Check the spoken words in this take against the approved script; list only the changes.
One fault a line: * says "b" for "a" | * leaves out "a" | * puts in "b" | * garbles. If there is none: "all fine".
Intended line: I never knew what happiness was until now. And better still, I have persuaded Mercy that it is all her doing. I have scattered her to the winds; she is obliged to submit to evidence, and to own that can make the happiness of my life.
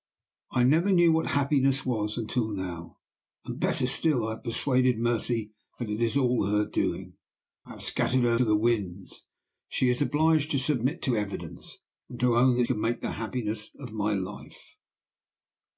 all fine